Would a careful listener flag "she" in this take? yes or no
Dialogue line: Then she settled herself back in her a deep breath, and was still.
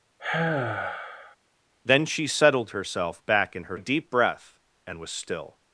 no